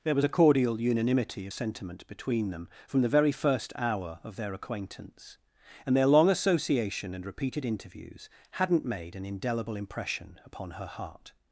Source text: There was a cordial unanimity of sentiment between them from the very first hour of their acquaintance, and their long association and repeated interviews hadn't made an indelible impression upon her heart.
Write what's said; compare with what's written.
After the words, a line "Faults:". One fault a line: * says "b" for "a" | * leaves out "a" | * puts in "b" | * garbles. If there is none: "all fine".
There was a cordial unanimity of sentiment between them from the very first hour of their acquaintance, and their long association and repeated interviews hadn't made an indelible impression upon her heart.
Faults:
all fine